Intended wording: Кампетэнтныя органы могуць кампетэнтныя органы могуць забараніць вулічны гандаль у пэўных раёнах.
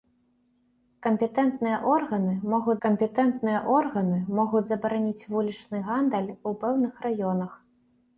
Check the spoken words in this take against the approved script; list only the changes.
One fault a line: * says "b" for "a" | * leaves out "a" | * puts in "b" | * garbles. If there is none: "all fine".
all fine